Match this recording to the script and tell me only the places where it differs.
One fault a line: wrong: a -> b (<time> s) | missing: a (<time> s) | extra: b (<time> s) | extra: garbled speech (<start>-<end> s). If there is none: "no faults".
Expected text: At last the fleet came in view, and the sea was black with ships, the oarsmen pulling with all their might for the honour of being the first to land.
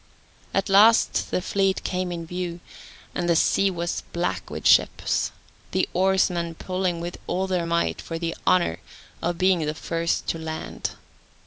no faults